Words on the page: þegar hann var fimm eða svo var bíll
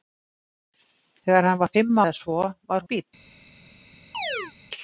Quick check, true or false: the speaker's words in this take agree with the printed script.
true